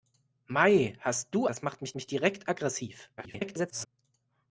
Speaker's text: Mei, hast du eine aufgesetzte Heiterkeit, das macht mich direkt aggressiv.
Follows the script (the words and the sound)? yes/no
no